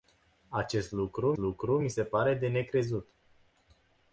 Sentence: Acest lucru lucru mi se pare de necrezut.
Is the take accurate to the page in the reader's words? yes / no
yes